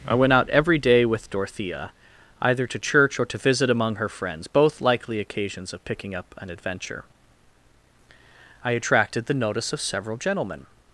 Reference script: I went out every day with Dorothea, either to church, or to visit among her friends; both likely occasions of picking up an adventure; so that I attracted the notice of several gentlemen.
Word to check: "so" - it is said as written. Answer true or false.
false